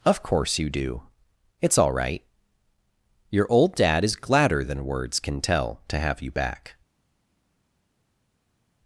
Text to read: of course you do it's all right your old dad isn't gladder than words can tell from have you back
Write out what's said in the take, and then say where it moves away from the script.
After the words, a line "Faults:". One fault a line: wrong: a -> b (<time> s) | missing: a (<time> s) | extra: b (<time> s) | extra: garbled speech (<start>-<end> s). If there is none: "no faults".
of course you do it's all right your old dad is gladder than words can tell to have you back
Faults:
wrong: isn't -> is (4.0 s)
wrong: from -> to (5.9 s)